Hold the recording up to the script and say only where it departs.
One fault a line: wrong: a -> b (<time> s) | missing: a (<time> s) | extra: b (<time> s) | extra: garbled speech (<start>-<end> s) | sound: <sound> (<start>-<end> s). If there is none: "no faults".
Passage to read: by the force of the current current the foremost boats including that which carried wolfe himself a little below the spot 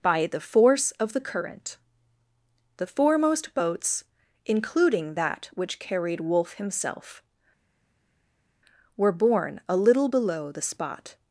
missing: current (1.8 s)
extra: were borne (9.0 s)